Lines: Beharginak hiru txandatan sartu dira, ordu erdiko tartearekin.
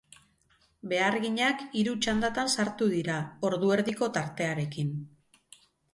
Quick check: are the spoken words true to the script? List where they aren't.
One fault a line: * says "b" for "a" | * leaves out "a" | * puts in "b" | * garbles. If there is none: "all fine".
all fine